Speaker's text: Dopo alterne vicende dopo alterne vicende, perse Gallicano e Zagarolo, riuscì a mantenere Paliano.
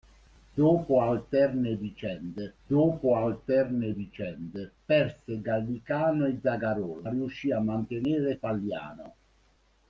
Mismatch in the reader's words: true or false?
false